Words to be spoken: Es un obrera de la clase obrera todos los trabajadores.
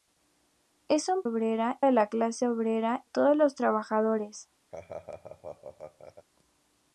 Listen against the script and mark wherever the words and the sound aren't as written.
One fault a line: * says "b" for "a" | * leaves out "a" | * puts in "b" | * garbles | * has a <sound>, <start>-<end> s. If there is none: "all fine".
* has a laugh, 4.7-6.3 s